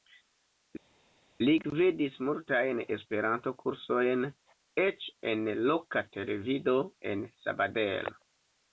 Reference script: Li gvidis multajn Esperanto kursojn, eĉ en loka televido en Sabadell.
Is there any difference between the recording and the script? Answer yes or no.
no